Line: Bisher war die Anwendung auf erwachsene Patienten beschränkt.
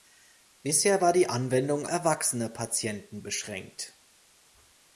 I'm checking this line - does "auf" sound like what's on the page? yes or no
no